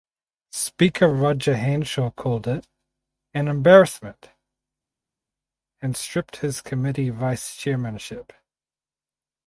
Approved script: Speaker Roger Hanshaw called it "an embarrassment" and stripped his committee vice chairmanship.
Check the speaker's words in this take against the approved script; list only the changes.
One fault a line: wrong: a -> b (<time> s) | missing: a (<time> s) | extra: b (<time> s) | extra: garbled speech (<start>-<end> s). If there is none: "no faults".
no faults